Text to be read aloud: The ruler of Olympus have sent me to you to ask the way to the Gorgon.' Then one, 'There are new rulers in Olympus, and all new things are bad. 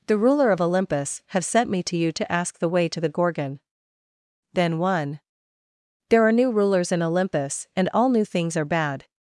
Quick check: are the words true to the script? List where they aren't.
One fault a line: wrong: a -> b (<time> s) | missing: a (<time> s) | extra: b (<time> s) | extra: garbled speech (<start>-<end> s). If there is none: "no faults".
no faults